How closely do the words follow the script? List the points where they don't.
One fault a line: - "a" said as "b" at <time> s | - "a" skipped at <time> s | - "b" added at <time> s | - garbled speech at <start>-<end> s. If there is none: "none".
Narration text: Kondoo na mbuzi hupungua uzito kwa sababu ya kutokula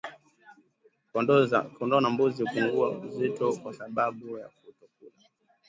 none